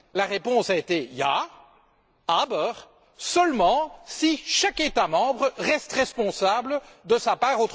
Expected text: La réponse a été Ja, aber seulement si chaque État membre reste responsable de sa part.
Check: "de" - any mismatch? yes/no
no